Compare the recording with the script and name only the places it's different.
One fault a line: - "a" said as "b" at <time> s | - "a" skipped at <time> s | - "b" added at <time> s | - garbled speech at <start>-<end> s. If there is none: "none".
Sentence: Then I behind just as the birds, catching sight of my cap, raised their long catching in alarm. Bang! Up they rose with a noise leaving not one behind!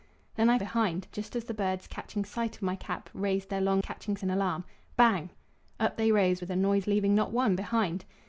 none